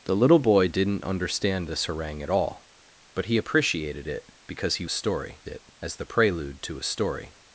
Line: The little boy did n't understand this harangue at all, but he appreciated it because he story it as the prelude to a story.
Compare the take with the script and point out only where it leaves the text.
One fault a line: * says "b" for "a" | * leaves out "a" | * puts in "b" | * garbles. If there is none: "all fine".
all fine